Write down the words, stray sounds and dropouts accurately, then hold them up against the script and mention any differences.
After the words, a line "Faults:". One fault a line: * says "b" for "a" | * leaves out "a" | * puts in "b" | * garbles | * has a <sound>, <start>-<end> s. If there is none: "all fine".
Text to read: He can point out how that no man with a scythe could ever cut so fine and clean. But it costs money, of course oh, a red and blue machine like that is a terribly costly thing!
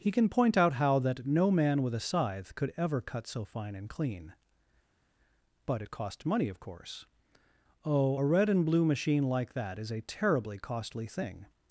He can point out how that no man with a scythe could ever cut so fine and clean. But it cost money, of course oh, a red and blue machine like that is a terribly costly thing!
Faults:
* says "cost" for "costs"